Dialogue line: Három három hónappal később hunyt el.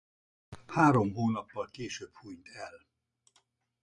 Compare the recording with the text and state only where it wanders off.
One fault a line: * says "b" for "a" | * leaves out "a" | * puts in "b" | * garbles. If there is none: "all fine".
* leaves out "három"